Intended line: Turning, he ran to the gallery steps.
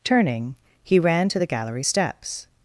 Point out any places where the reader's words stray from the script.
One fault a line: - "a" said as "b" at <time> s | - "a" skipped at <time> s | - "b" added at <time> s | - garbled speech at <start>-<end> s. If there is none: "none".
none